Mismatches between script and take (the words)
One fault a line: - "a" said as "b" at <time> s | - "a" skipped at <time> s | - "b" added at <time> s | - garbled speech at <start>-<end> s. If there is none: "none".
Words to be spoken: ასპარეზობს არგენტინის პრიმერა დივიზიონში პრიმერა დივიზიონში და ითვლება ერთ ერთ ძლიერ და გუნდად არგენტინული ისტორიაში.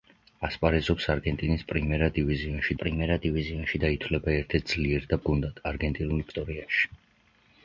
none